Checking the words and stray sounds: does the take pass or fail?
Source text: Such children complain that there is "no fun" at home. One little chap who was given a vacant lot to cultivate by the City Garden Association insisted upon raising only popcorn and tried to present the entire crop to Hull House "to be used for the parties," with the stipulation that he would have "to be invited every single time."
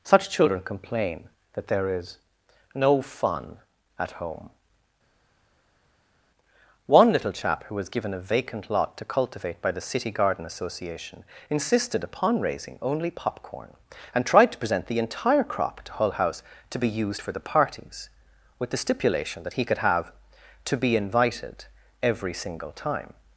fail